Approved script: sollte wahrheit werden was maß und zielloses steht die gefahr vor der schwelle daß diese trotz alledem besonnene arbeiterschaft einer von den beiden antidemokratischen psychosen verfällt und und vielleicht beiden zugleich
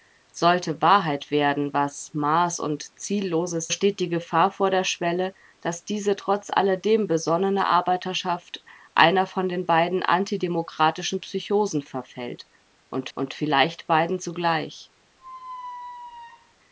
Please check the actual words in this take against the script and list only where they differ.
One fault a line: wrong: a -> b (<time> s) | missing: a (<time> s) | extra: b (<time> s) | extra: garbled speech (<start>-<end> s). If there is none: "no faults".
no faults